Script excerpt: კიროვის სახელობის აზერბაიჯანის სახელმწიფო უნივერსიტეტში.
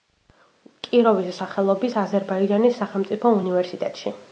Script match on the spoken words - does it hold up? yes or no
yes